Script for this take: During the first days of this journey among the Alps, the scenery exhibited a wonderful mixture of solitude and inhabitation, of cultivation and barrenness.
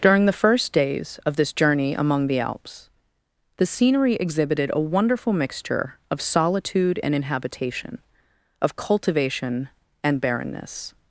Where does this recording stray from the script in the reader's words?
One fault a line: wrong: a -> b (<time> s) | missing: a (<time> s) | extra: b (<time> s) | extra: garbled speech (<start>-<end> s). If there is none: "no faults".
no faults